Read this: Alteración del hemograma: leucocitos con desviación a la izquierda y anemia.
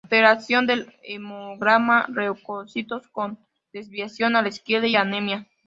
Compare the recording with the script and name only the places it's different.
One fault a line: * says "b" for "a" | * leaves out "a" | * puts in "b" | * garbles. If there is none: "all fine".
all fine